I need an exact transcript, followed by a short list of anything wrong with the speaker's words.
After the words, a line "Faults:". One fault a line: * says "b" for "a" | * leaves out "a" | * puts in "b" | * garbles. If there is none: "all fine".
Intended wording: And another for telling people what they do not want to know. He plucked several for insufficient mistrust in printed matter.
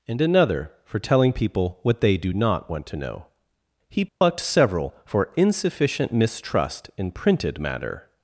And another for telling people what they do not want to know. He plucked several for insufficient mistrust in printed matter.
Faults:
all fine